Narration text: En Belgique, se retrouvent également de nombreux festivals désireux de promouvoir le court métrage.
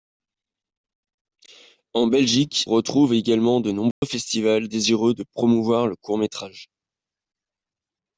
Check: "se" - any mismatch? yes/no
yes